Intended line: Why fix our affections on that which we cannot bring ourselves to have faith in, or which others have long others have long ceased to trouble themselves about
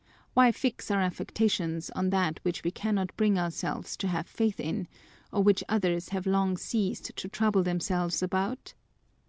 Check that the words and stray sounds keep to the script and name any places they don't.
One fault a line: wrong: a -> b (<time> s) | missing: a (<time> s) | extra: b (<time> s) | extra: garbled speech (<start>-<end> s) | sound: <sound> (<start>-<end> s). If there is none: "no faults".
missing: others have long (6.6 s)